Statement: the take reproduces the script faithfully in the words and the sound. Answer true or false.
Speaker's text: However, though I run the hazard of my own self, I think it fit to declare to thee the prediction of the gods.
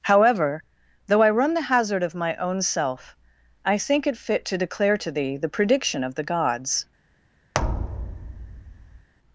false